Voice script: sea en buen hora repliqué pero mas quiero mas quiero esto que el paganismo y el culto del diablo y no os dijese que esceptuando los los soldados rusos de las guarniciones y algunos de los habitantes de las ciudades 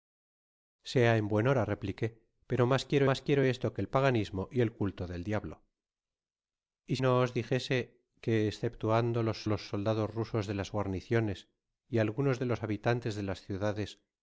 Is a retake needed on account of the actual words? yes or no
no